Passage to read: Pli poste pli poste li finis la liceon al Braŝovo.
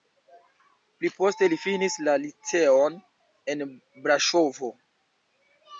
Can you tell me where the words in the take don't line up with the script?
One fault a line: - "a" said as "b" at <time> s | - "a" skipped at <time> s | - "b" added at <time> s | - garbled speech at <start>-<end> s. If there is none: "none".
- "pli poste" skipped at 1.5 s
- "al" said as "en" at 3.5 s